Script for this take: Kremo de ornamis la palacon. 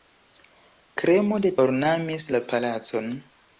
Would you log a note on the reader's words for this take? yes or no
no